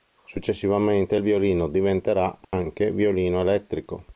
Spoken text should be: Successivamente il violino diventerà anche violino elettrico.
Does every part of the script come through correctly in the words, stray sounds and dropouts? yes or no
no